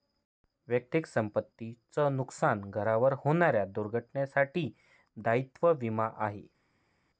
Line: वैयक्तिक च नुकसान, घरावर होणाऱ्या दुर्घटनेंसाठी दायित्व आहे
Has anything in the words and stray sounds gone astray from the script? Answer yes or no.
yes